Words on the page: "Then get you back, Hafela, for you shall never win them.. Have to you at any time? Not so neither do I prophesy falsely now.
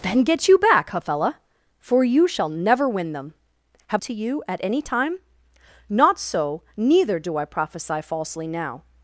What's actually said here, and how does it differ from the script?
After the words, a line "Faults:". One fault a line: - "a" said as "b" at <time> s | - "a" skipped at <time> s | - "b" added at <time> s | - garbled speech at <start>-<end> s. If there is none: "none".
"Then get you back, Hafela, for you shall never win them.. Have to you at any time? Not so neither do I prophesy falsely now.
Faults:
none